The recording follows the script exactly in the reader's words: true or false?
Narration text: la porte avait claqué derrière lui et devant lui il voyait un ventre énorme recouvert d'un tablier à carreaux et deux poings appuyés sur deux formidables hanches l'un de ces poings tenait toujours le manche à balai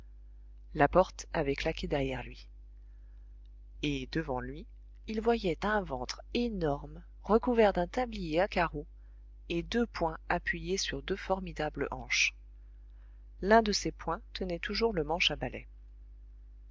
true